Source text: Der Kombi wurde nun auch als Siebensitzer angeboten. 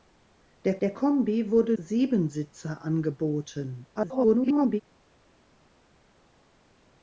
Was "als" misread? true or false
true